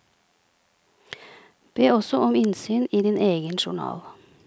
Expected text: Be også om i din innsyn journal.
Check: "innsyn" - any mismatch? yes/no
yes